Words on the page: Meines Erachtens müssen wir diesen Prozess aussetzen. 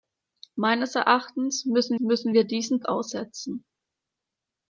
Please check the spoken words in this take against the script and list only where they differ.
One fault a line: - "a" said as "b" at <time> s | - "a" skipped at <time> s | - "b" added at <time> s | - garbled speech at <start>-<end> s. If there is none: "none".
- "müssen" added at 2.0 s
- "Prozess" skipped at 2.8 s